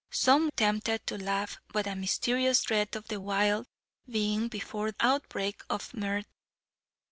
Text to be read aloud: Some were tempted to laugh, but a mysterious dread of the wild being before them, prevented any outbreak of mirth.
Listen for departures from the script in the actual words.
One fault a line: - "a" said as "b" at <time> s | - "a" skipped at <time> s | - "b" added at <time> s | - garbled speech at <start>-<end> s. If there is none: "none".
- "were" skipped at 0.5 s
- "them prevented any" skipped at 4.9 s